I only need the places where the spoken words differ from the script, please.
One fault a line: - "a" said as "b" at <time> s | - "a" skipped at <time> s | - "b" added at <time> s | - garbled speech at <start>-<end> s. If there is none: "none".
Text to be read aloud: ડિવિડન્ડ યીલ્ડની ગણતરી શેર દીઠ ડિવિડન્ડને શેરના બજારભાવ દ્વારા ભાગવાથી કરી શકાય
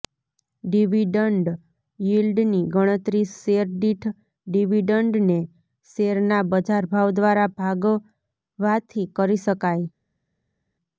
none